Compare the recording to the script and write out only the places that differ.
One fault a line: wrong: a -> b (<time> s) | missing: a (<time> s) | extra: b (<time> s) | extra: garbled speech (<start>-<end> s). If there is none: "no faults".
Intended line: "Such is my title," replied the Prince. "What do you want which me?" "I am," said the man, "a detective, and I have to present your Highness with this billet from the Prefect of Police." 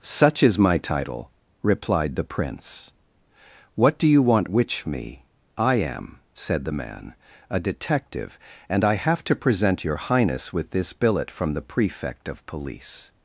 no faults